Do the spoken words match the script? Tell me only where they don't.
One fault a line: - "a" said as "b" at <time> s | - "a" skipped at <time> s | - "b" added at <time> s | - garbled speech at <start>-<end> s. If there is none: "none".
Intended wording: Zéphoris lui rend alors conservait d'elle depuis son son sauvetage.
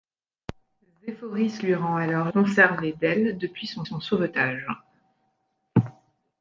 none